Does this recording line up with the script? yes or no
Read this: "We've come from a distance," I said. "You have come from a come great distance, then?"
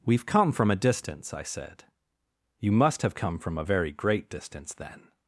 no